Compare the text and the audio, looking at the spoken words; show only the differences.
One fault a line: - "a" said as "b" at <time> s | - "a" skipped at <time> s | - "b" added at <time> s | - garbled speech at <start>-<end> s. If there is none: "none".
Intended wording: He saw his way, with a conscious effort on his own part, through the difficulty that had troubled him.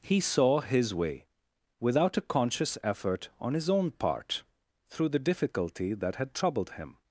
- "with" said as "without" at 1.8 s